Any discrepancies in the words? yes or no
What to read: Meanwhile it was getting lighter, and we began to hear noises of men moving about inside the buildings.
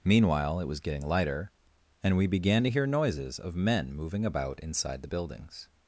no